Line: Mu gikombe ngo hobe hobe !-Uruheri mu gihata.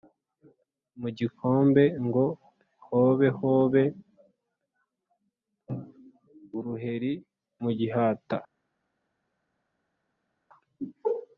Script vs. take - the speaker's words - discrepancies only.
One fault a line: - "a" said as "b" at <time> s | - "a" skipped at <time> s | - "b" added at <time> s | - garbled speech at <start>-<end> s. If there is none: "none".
none